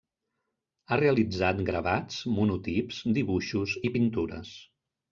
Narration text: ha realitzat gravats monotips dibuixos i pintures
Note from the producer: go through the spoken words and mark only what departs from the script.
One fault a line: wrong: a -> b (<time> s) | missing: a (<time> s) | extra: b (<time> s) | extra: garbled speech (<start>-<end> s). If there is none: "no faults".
no faults